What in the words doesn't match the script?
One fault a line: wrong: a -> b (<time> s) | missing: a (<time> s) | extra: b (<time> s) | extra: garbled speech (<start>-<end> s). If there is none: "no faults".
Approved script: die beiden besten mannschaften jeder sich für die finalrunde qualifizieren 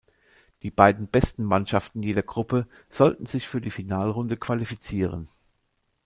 extra: gruppe sollten (2.2 s)